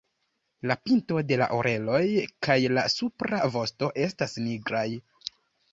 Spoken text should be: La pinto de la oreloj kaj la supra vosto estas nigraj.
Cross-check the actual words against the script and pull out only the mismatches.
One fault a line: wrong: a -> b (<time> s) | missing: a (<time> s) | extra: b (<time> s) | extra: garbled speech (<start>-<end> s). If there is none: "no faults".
no faults